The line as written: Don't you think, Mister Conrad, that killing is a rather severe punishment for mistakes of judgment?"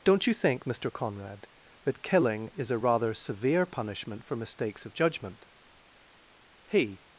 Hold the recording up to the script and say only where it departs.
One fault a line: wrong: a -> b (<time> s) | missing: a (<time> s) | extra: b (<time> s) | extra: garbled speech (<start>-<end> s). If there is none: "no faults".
extra: He (6.7 s)